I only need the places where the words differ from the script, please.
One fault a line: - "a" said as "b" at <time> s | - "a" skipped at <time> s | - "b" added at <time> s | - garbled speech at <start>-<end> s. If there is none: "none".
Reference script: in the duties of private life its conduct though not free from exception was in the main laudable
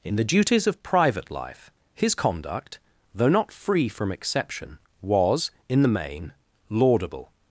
- "its" said as "his" at 1.9 s